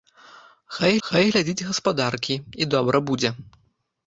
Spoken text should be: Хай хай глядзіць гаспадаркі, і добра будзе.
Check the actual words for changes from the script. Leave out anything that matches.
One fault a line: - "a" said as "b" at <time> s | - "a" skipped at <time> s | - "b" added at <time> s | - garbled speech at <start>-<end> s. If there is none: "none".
none